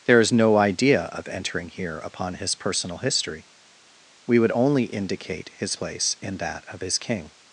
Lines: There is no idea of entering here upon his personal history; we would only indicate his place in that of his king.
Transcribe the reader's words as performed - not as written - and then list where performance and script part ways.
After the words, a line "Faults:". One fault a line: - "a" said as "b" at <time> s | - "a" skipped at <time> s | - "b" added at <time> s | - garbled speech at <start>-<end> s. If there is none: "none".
There is no idea of entering here upon his personal history; we would only indicate his place in that of his king.
Faults:
none